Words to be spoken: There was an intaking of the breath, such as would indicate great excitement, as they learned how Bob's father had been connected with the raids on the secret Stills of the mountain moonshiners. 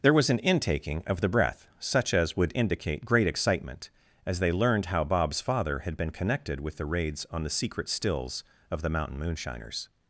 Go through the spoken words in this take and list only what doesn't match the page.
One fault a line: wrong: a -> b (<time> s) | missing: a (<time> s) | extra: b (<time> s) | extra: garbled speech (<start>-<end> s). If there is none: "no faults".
no faults